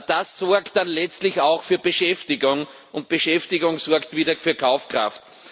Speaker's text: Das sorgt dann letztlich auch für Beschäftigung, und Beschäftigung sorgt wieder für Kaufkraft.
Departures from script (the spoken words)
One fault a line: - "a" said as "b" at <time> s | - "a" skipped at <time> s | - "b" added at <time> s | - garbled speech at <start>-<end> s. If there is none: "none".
none